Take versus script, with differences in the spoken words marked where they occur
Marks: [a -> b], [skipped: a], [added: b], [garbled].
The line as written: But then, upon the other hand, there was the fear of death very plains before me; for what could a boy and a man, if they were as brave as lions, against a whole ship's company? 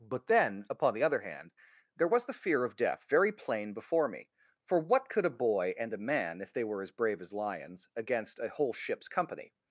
But then, upon the other hand, there was the fear of death very [plains -> plain] before me; for what could a boy and a man, if they were as brave as lions, against a whole ship's company?